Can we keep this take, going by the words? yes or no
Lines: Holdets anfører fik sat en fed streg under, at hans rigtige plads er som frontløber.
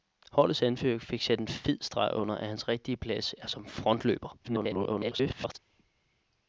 no